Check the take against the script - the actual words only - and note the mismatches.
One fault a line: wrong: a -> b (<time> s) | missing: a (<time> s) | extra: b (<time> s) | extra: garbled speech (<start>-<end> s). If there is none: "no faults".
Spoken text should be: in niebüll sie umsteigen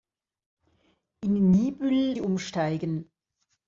no faults